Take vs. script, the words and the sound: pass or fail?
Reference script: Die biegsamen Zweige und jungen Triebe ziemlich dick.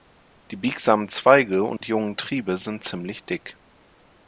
fail